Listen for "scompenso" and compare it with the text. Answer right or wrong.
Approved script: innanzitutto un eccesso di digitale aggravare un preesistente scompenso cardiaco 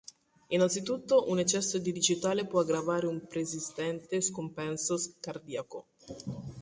right